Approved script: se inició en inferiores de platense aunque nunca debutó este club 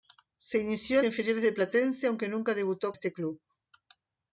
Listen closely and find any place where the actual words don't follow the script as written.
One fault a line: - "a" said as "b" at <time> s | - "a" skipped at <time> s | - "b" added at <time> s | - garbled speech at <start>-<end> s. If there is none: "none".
none